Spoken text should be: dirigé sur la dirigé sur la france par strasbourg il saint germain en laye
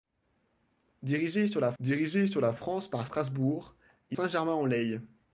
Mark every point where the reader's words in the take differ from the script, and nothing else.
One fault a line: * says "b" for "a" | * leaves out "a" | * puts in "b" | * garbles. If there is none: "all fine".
all fine